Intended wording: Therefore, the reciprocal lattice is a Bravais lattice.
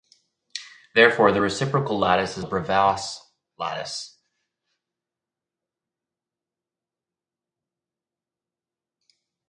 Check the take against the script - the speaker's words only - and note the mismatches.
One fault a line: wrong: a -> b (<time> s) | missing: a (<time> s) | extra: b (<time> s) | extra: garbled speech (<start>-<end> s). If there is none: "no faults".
no faults